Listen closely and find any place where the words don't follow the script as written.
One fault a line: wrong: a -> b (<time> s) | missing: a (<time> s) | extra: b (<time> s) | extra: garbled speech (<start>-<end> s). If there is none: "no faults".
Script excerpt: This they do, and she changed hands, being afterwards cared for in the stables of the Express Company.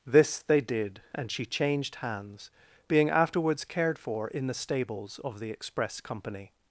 wrong: do -> did (0.6 s)